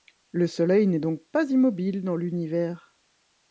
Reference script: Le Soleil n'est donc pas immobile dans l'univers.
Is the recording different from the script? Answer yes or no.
no